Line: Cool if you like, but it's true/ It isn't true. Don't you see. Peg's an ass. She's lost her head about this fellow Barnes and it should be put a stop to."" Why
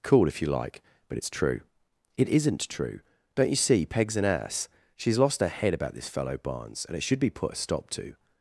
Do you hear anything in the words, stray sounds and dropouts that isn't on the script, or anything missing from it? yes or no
yes